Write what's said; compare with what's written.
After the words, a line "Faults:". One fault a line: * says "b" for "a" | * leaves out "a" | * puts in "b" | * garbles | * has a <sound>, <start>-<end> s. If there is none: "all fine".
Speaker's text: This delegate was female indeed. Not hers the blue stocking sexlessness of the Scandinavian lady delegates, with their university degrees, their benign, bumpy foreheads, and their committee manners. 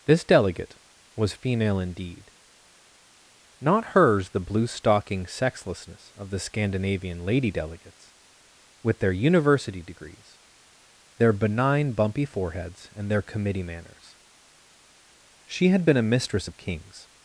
This delegate was female indeed. Not hers the blue stocking sexlessness of the Scandinavian lady delegates, with their university degrees, their benign, bumpy foreheads, and their committee manners. She had been a mistress of kings
Faults:
* puts in "She had been a mistress of kings"